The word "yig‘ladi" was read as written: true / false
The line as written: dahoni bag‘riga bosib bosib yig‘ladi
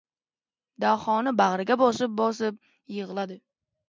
true